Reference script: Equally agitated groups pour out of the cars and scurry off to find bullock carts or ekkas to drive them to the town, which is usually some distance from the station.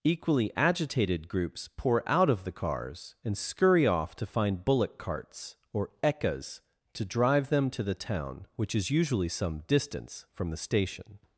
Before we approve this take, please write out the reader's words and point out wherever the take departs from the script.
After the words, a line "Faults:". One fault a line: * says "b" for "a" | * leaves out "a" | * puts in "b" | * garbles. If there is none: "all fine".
Equally agitated groups pour out of the cars and scurry off to find bullock carts or ekkas to drive them to the town, which is usually some distance from the station.
Faults:
all fine